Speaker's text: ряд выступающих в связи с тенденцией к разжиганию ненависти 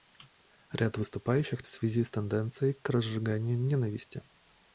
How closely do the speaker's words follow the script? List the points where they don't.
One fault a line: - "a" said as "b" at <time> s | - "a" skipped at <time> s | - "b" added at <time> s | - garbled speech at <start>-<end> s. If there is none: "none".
none